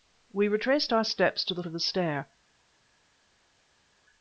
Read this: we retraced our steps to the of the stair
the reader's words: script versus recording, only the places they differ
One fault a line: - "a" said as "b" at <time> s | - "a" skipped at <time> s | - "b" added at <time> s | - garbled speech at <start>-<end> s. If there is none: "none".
none